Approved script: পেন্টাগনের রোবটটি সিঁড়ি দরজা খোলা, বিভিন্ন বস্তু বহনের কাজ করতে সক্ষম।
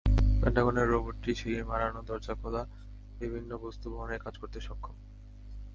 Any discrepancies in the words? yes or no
yes